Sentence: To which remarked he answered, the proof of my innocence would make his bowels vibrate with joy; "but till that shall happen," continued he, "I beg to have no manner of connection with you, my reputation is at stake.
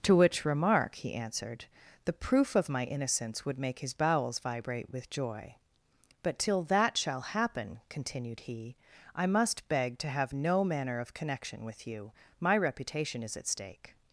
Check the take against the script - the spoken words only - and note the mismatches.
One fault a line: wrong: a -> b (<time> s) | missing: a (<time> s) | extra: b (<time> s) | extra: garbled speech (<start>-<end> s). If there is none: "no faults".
wrong: remarked -> remark (0.5 s)
extra: must (9.3 s)